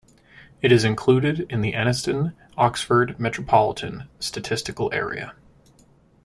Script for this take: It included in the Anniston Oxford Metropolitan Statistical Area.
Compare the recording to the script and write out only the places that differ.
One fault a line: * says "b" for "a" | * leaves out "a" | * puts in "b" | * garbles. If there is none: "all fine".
* puts in "is"